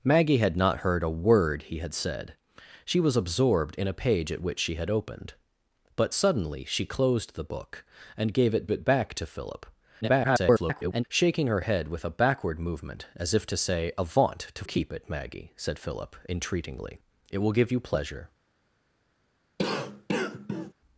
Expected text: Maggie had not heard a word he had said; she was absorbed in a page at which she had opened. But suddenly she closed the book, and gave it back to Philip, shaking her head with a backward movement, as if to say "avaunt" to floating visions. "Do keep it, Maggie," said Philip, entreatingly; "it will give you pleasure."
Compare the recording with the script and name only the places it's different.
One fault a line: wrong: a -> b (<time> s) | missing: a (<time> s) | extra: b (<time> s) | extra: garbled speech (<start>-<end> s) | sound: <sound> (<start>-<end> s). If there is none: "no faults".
extra: it (8.7 s)
extra: garbled speech (10.0-11.0 s)
missing: floating visions Do (14.6 s)
sound: cough (19.6-20.7 s)